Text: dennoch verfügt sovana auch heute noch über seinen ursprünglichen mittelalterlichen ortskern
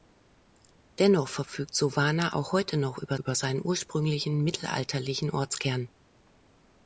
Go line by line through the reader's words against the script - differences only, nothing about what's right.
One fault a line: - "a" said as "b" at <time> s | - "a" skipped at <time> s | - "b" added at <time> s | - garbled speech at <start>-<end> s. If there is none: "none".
- "über" added at 3.1 s